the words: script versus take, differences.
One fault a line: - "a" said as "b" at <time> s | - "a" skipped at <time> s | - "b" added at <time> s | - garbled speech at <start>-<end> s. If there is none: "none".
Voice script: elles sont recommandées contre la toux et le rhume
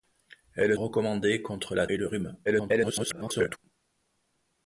- "sont" skipped at 0.8 s
- "toux" skipped at 1.9 s
- garbled speech at 2.5-3.6 s